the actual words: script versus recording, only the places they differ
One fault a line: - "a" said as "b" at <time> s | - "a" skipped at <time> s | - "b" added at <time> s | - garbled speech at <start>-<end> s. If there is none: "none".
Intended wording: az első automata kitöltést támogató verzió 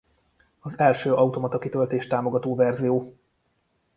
none